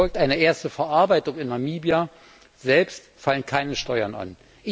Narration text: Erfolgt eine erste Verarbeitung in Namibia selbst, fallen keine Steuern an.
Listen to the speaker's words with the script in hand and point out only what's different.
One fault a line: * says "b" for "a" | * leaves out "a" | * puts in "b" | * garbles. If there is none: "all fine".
all fine